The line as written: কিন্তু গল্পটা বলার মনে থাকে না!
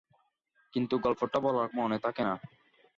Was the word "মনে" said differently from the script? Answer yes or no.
no